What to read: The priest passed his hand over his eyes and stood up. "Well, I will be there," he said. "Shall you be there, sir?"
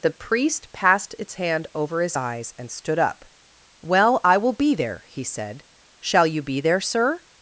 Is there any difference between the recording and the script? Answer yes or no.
yes